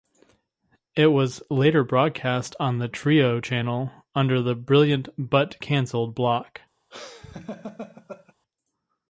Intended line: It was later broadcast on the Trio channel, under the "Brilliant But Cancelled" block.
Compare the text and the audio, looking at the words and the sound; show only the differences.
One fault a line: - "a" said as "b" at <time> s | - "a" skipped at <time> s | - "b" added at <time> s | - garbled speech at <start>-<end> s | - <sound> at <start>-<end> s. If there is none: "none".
- laugh at 6.9-8.3 s